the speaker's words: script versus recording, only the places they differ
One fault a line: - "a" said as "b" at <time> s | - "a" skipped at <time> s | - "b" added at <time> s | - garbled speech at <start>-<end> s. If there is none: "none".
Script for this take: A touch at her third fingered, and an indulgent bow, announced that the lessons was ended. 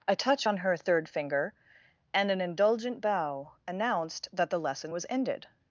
- "at" said as "on" at 0.4 s
- "fingered" said as "finger" at 1.1 s
- "lessons" said as "lesson" at 4.6 s